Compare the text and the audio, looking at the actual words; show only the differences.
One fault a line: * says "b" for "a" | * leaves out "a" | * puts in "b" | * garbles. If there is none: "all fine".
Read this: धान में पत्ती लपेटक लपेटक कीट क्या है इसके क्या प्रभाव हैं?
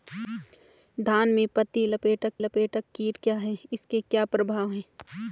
all fine